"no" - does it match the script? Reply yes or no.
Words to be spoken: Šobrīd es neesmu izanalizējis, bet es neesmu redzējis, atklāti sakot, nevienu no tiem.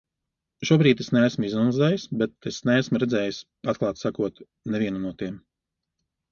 yes